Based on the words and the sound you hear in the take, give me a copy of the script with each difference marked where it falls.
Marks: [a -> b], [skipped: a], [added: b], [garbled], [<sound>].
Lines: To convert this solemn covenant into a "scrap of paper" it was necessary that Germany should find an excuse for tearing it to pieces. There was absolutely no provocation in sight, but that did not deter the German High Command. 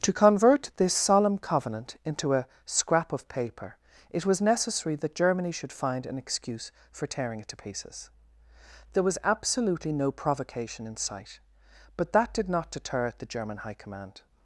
To convert this solemn covenant into a "scrap of paper" it was necessary that Germany should find an excuse for tearing it to pieces. There was absolutely no provocation in sight, but that did not deter the German High Command.